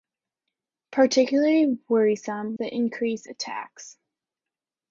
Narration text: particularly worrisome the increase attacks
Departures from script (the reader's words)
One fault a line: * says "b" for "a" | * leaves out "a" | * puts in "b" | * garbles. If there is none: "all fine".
all fine